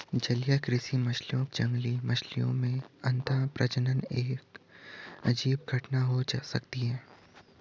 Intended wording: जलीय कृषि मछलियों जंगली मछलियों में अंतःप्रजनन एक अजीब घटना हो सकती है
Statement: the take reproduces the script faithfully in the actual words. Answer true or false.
true